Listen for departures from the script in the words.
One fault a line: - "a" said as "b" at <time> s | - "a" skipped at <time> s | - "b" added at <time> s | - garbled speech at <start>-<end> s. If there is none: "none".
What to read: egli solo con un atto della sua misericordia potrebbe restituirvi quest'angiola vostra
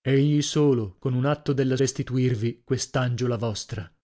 - "sua misericordia potrebbe" skipped at 1.8 s